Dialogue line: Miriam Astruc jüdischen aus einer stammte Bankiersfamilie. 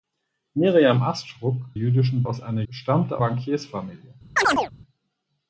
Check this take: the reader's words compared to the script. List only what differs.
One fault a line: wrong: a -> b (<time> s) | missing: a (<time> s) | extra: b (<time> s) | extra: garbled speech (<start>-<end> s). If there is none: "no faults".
no faults